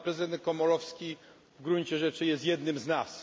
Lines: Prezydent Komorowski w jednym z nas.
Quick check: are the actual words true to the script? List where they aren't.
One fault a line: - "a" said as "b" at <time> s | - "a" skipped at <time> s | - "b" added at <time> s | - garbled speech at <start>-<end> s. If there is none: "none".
- "gruncie rzeczy jest" added at 1.6 s